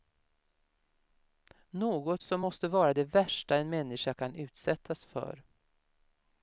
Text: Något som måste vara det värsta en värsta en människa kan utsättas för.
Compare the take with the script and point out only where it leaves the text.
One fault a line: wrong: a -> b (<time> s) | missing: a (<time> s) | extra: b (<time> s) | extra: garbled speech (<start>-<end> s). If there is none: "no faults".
missing: värsta en (3.7 s)